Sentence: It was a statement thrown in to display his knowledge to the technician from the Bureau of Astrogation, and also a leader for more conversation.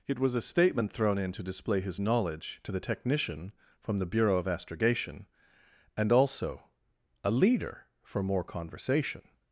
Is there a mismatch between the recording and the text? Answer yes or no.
no